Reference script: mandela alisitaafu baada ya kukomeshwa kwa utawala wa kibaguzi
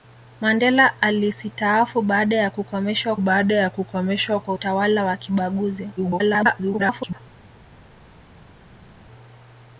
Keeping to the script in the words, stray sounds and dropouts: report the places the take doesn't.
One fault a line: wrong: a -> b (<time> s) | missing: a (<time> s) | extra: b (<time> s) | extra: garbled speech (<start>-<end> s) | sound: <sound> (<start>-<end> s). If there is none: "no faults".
extra: baada ya kukomeshwa (3.2 s)
extra: garbled speech (6.0-7.2 s)